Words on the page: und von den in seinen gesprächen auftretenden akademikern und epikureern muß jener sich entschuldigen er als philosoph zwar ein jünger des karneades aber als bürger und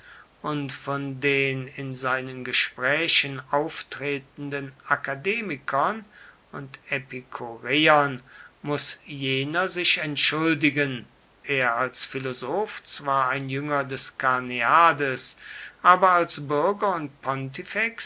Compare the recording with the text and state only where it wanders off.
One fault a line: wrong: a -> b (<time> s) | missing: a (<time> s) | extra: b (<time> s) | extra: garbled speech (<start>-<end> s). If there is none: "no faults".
no faults